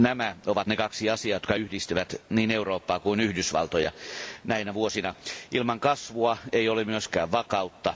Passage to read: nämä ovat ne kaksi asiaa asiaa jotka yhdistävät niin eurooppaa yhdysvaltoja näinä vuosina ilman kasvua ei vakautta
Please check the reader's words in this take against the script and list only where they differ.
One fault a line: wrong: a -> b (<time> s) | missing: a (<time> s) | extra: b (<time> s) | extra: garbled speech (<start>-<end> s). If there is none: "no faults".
missing: asiaa (1.4 s)
extra: kuin (3.0 s)
extra: ole myöskään (6.7 s)